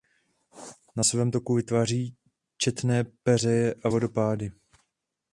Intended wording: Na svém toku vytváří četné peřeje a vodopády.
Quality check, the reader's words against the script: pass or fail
pass